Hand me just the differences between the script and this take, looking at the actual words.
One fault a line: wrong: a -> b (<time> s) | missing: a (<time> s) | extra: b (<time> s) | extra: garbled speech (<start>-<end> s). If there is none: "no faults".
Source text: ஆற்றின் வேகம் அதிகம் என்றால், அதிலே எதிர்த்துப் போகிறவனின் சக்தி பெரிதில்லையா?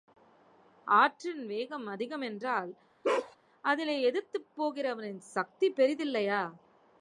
no faults